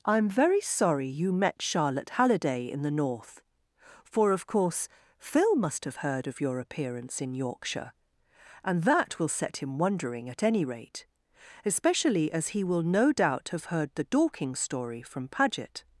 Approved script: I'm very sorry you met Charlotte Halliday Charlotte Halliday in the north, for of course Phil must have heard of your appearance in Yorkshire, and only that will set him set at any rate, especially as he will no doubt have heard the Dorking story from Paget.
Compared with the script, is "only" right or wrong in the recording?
wrong